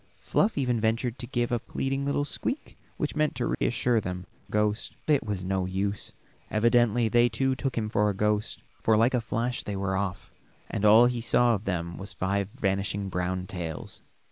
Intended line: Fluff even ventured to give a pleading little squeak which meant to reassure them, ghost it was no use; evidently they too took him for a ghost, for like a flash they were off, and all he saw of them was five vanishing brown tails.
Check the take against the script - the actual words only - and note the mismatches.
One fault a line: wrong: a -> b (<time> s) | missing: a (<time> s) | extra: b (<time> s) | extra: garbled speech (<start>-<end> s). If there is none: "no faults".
no faults